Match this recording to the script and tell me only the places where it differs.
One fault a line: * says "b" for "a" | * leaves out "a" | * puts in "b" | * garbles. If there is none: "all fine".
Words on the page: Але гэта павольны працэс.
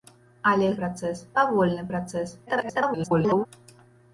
* says "працэс" for "гэта"
* garbles